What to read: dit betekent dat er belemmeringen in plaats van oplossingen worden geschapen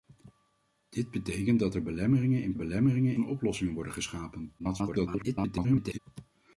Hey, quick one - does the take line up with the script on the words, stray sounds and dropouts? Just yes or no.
no